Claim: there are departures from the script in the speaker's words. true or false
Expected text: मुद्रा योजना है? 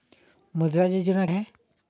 false